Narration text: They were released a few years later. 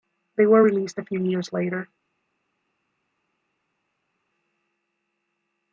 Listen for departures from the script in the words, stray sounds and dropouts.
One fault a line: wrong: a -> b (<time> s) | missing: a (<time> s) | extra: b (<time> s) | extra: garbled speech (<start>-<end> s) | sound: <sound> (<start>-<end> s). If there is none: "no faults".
no faults